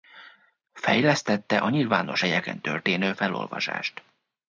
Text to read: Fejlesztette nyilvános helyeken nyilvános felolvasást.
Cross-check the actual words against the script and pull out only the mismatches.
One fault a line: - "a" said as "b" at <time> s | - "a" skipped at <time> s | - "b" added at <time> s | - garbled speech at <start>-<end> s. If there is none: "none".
- "a" added at 1.6 s
- "nyilvános" said as "történő" at 2.6 s